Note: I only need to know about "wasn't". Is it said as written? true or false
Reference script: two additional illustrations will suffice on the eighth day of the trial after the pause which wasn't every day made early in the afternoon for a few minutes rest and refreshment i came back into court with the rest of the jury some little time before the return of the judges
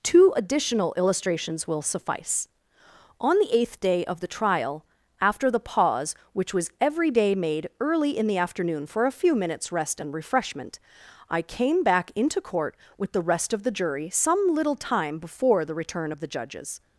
false